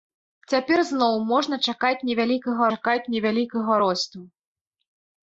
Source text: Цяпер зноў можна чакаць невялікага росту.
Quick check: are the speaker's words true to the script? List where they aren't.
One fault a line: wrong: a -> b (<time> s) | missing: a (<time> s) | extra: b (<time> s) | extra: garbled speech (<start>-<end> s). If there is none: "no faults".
extra: чакаць невялікага (2.8 s)